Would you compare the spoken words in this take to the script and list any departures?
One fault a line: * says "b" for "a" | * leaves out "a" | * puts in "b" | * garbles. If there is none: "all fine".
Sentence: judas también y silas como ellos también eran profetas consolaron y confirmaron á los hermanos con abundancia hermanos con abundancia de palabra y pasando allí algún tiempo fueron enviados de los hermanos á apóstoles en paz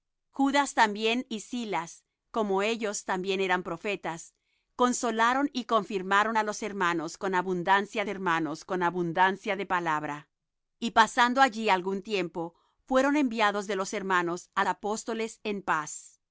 all fine